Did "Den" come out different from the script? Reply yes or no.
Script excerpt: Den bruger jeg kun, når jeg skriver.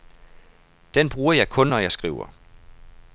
no